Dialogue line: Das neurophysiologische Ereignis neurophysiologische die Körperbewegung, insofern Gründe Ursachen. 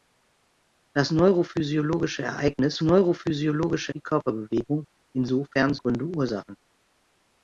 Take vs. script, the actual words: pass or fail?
pass